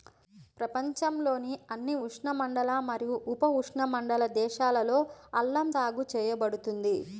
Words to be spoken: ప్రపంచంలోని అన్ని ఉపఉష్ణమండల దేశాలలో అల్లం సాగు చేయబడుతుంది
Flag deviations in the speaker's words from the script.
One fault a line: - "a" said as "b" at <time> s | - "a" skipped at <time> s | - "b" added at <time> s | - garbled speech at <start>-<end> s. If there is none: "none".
- "ఉష్ణమండల మరియు" added at 2.1 s